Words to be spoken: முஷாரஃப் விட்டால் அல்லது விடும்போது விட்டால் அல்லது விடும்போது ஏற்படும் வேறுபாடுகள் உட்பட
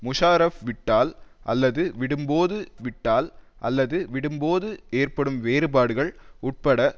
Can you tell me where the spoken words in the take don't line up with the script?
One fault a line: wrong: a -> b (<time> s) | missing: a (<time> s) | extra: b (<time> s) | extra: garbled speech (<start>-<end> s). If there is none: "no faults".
no faults